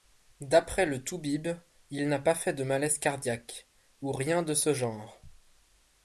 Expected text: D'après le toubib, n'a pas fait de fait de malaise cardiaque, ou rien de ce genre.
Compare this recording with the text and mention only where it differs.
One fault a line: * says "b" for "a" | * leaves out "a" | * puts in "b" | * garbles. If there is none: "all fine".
* puts in "il"
* leaves out "fait de"